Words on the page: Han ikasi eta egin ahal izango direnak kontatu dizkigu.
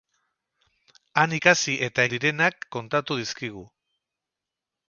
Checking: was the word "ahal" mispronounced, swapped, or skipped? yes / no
yes